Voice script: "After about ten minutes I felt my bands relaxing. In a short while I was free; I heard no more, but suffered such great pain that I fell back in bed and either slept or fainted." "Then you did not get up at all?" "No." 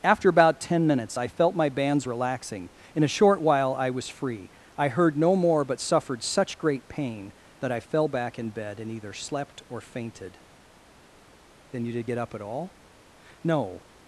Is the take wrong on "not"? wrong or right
wrong